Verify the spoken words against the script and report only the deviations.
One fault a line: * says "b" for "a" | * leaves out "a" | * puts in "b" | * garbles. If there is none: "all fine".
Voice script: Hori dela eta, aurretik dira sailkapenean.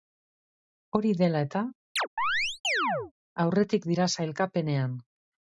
all fine